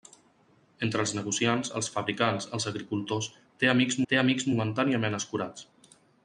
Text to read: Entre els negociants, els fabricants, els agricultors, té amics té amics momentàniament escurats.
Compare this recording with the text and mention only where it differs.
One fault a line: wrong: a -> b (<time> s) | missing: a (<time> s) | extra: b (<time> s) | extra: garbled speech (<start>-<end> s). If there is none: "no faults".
no faults